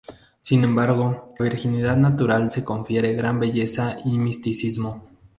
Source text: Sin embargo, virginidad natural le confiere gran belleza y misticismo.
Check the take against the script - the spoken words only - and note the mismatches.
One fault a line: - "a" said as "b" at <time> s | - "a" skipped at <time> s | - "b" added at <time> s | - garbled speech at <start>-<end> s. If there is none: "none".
none